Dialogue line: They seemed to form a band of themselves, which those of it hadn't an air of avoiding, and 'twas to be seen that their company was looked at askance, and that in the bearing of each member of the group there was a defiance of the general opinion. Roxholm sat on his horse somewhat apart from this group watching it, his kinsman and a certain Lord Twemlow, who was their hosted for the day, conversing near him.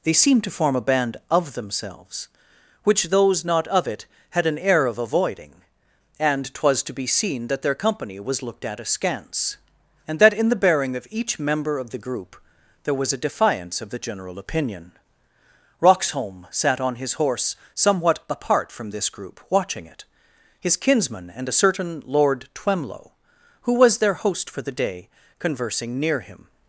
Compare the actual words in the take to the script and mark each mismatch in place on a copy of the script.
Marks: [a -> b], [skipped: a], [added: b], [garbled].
They seemed to form a band of themselves, which those [added: not] of it [hadn't -> had] an air of avoiding, and 'twas to be seen that their company was looked at askance, and that in the bearing of each member of the group there was a defiance of the general opinion. Roxholm sat on his horse somewhat apart from this group watching it, his kinsman and a certain Lord Twemlow, who was their [hosted -> host] for the day, conversing near him.